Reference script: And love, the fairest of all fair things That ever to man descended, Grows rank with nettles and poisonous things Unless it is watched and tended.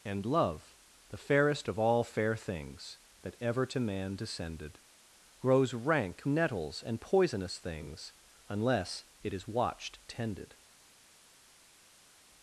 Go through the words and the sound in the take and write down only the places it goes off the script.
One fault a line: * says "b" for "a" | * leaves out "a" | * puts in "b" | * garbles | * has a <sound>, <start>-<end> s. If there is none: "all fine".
* leaves out "with"
* leaves out "and"